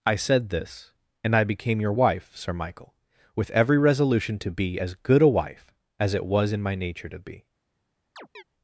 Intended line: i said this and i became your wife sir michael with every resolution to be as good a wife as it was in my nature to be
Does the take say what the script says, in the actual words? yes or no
yes